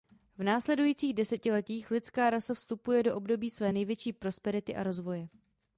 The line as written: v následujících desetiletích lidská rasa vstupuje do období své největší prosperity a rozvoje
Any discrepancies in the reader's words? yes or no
no